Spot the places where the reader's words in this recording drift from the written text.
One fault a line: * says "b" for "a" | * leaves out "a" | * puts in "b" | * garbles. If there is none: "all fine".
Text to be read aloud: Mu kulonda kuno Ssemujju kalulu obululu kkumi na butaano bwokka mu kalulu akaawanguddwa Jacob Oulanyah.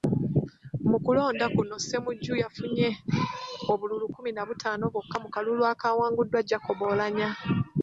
* says "yafunye" for "kalulu"